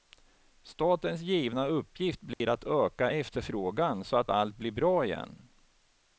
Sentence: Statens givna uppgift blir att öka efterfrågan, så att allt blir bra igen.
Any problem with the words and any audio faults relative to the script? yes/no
yes